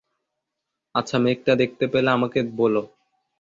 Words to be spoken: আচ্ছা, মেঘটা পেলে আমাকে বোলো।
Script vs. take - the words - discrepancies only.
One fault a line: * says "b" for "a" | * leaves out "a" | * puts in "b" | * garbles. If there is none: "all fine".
* puts in "দেখতে"